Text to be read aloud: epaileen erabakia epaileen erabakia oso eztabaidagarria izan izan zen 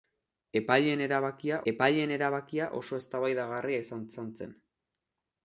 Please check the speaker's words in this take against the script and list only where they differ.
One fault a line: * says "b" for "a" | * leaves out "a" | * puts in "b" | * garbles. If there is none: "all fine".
all fine